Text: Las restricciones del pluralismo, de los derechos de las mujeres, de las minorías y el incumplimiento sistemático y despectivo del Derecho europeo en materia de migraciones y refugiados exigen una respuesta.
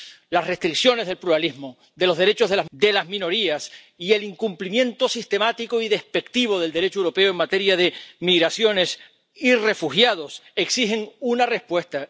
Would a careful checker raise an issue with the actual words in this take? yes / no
yes